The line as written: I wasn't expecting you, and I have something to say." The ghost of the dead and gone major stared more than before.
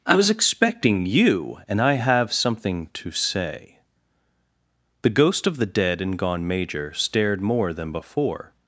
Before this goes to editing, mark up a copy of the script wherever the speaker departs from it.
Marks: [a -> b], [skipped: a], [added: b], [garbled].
I [wasn't -> was] expecting you, and I have something to say." The ghost of the dead and gone major stared more than before.